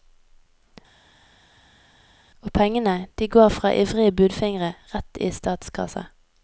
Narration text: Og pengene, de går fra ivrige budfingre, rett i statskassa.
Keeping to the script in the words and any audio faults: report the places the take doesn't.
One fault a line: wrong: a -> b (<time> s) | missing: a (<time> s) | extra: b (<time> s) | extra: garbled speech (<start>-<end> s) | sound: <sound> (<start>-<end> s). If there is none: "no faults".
no faults